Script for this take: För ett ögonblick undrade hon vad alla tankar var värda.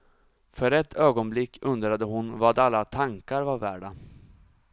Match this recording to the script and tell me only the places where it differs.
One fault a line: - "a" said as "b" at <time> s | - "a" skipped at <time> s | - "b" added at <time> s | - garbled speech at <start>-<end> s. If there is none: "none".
none